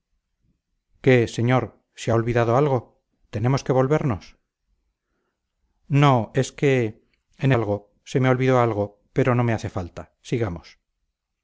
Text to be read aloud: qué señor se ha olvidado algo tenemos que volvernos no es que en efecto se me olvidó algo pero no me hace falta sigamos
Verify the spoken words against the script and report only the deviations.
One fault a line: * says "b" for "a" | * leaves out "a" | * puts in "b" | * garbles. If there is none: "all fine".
* says "algo" for "efecto"